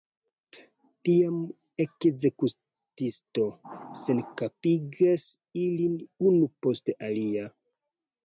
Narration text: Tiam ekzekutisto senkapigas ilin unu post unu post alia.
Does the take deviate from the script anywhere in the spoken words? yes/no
yes